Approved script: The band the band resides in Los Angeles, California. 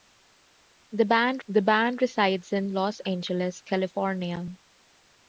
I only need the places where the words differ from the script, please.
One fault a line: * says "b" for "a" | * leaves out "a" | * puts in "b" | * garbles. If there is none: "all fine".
all fine